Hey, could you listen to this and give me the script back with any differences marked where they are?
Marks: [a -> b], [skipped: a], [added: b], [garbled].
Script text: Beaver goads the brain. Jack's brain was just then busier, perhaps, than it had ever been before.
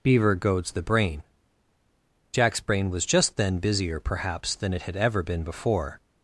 Beaver goads the brain. Jack's brain was just then busier, perhaps, than it had ever been before.